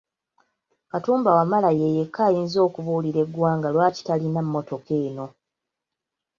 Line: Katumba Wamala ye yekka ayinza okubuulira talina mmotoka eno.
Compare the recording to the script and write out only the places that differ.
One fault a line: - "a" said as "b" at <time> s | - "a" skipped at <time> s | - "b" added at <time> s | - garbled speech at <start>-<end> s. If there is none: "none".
- "eggwanga lwaki" added at 3.3 s